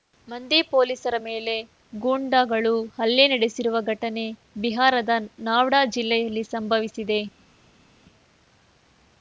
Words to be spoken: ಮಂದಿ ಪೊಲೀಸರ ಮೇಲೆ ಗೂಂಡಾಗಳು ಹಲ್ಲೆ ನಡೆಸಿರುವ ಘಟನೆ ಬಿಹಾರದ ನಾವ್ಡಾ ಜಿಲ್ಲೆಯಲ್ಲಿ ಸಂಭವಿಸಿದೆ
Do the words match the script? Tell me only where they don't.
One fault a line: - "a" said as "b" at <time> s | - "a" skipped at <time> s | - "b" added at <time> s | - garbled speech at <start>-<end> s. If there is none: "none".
none